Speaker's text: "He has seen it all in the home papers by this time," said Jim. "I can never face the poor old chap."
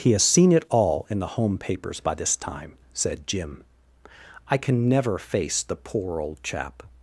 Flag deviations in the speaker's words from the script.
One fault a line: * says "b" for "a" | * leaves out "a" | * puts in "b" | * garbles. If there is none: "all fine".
all fine